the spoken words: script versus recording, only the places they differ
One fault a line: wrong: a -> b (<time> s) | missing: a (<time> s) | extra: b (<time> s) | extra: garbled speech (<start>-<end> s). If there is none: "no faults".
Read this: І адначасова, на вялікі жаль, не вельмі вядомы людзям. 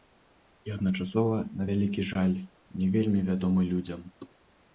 no faults